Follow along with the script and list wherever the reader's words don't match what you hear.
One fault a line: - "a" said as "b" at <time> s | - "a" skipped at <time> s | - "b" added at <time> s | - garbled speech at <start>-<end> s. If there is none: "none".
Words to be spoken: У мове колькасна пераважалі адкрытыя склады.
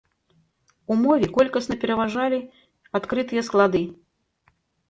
none